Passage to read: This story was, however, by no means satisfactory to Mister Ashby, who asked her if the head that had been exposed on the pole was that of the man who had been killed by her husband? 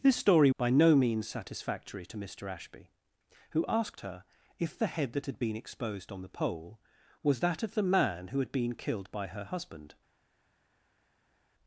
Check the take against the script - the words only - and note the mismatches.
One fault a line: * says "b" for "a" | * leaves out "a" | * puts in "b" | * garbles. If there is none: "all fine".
* leaves out "was however"